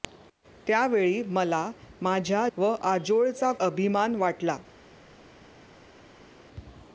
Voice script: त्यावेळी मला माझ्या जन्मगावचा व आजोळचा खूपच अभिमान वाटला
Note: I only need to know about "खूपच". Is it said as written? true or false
false